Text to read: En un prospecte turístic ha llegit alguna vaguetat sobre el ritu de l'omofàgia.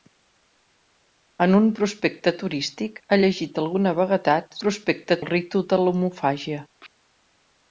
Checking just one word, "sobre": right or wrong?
wrong